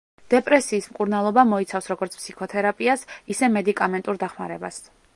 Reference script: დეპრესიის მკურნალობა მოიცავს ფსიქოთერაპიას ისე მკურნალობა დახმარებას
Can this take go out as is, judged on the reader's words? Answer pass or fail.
fail